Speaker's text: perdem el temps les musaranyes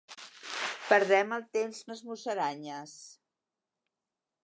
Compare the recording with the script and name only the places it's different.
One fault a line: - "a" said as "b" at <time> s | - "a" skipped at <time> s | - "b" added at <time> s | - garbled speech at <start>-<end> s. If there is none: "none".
none